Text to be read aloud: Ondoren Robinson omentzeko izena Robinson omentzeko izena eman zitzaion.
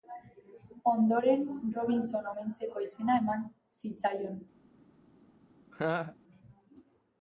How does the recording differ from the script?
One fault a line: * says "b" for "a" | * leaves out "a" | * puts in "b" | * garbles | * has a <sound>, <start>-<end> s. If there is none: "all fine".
* leaves out "Robinson omentzeko izena"
* has a laugh, 5.7-6.2 s